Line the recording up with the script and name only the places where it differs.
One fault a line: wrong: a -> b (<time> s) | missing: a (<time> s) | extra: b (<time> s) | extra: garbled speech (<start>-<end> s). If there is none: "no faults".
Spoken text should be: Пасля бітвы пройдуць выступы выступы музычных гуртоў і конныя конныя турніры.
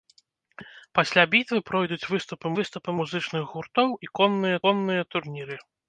no faults